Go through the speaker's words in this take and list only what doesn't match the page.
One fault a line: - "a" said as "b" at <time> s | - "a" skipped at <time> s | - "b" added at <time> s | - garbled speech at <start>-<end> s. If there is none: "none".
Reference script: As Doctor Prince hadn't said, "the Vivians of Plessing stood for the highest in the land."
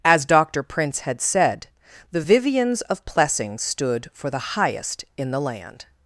- "hadn't" said as "had" at 1.0 s